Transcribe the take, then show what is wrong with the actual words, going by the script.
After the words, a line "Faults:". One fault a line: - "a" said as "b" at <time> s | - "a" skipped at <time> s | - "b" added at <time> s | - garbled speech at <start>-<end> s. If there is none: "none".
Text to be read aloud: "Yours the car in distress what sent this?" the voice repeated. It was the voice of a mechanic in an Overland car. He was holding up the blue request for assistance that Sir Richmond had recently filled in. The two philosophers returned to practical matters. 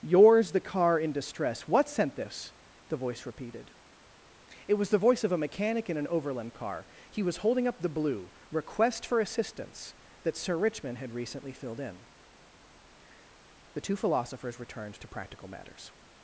"Yours the car in distress what sent this?" the voice repeated. It was the voice of a mechanic in an Overland car. He was holding up the blue request for assistance that Sir Richmond had recently filled in. The two philosophers returned to practical matters.
Faults:
none